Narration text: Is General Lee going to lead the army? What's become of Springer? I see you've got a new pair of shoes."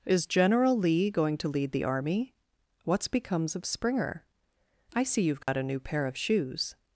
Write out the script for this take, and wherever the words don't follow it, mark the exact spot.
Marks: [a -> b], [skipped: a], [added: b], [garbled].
Is General Lee going to lead the army? What's [become -> becomes] of Springer? I see you've got a new pair of shoes."